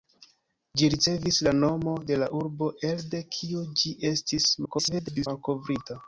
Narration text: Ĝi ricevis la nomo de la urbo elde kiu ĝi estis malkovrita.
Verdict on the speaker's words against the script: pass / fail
fail